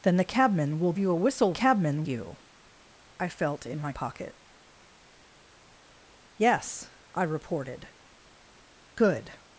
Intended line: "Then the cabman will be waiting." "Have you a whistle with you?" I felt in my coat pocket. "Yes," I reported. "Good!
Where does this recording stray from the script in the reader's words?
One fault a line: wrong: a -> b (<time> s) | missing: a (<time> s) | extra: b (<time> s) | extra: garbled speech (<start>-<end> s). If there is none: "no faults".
missing: be waiting Have (0.9 s)
wrong: with -> cabman (1.5 s)
missing: coat (3.9 s)